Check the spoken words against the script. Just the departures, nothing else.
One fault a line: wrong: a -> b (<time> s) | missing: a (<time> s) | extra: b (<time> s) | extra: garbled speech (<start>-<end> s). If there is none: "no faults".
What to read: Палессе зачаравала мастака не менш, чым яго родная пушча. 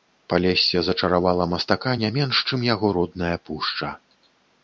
no faults